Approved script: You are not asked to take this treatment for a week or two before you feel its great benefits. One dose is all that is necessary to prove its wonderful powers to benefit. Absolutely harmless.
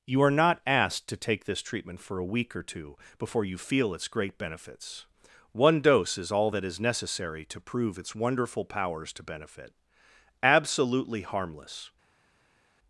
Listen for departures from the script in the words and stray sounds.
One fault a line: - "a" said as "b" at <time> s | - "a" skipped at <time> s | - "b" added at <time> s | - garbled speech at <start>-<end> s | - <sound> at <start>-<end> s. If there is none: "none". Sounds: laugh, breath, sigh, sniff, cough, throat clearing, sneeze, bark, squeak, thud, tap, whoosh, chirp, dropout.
none